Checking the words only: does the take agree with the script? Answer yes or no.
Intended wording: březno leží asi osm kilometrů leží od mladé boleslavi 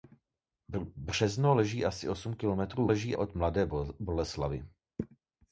yes